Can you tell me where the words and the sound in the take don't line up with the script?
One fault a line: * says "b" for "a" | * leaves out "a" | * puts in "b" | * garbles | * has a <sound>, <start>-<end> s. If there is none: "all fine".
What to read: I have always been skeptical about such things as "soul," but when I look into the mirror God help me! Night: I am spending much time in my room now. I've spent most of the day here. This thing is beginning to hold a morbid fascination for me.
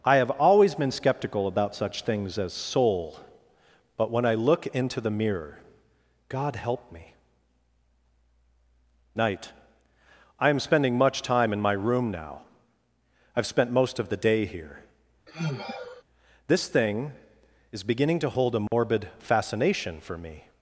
* has a sigh, 15.3-16.0 s
* has a dropout, 18.7-18.7 s